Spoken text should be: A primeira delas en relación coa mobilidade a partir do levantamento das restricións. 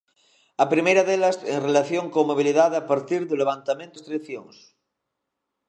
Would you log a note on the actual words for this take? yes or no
yes